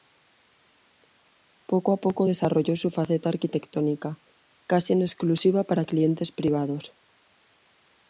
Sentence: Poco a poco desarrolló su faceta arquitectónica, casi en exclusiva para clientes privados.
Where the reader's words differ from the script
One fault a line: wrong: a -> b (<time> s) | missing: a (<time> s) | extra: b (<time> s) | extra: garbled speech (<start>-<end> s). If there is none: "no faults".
no faults